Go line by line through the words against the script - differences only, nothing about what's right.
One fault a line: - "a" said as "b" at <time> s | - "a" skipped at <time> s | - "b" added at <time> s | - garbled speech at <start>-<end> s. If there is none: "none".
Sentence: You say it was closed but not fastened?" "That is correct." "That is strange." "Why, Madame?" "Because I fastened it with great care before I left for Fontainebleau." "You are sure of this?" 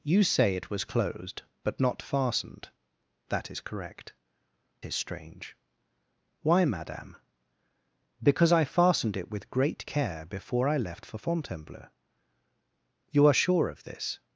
- "That" skipped at 4.1 s